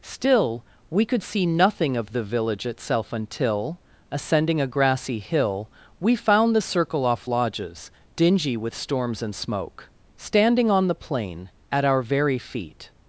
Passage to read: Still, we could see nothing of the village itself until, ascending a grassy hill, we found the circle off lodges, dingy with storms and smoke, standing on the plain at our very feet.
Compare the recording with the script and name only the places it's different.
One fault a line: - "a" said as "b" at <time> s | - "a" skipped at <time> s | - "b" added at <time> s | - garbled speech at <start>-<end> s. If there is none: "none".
none